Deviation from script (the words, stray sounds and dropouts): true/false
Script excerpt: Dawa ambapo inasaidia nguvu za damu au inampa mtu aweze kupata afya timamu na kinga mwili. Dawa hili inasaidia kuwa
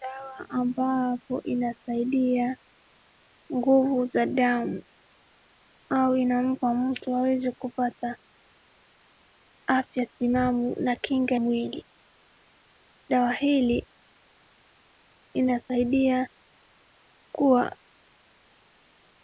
false